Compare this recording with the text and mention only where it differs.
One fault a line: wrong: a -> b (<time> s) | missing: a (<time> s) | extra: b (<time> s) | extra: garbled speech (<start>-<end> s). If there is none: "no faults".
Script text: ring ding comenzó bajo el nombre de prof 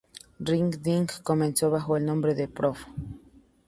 no faults